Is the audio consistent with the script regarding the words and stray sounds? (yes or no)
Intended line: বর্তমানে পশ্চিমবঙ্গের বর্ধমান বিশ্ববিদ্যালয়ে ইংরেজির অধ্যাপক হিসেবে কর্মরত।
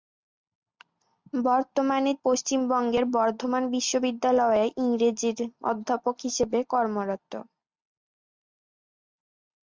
yes